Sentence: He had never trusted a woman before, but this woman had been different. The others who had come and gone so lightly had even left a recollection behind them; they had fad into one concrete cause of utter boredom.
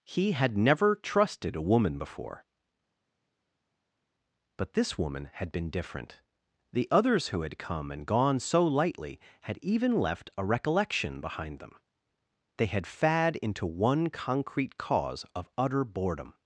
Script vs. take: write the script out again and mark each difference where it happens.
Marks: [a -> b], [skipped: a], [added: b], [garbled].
He had never trusted a woman before, but this woman had been different. The others who had come and gone so lightly had even left a recollection behind them; they had fad into one concrete cause of utter boredom.